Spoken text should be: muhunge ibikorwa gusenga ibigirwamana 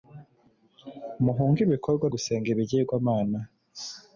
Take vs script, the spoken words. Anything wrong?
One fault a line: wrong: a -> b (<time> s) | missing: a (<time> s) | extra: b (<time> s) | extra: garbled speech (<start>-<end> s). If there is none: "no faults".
no faults